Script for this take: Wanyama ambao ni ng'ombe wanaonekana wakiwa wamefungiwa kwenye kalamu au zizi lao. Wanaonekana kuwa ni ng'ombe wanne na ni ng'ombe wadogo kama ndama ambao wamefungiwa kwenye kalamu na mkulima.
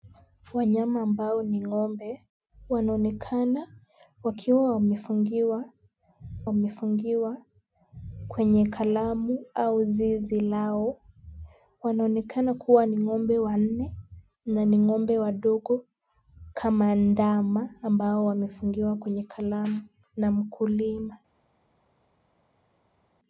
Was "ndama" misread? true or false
false